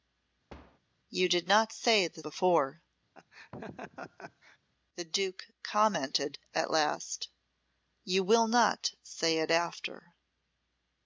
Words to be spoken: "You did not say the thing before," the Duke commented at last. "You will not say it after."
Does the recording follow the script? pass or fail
fail